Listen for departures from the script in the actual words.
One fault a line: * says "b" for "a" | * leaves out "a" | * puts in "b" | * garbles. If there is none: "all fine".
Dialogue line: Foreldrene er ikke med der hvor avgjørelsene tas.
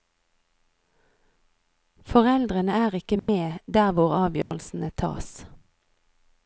all fine